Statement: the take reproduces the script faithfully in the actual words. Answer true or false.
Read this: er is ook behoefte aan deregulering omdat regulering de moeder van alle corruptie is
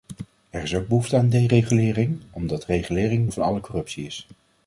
false